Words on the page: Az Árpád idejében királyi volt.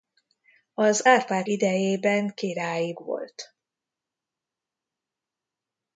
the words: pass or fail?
pass